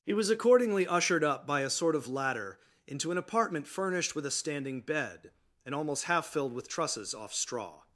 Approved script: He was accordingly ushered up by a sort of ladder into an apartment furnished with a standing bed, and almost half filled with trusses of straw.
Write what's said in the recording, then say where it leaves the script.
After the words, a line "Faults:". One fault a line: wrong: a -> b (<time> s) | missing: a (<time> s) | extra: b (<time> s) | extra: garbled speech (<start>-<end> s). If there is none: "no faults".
He was accordingly ushered up by a sort of ladder into an apartment furnished with a standing bed, and almost half filled with trusses off straw.
Faults:
wrong: of -> off (7.1 s)